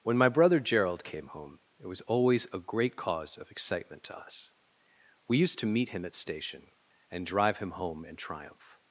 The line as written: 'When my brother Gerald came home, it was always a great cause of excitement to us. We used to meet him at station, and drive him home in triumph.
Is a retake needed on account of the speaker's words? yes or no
no